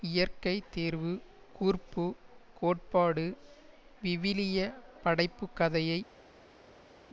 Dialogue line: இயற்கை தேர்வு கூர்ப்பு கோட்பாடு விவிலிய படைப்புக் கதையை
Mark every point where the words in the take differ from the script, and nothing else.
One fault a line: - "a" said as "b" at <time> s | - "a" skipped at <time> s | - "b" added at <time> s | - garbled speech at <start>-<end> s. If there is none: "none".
none